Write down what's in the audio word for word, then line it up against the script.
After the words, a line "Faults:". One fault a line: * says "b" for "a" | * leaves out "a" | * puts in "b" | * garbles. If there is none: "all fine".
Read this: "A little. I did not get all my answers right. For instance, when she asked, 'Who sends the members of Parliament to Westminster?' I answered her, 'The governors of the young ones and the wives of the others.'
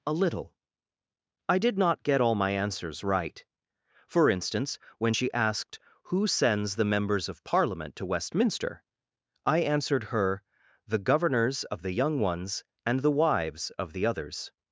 "A little. I did not get all my answers right. For instance, when she asked, 'Who sends the members of Parliament to Westminster?' I answered her, 'The governors of the young ones and the wives of the others.'
Faults:
all fine